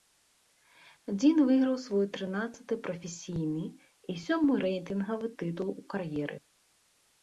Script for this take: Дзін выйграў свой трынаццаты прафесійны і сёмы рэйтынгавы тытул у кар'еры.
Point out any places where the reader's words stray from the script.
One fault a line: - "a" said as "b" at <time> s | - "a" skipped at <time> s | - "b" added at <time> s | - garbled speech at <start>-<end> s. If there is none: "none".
none